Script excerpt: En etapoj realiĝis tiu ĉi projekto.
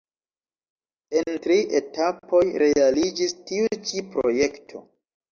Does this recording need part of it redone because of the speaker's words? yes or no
yes